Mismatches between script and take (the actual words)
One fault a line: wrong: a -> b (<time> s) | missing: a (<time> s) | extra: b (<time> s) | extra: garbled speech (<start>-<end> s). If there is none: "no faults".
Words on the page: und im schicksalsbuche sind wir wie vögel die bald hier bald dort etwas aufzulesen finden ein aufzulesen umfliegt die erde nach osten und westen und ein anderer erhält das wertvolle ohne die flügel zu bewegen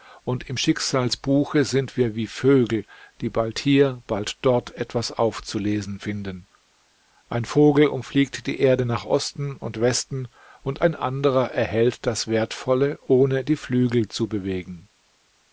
wrong: aufzulesen -> vogel (7.4 s)